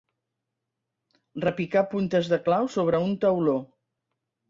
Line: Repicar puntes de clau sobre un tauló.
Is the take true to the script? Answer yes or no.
yes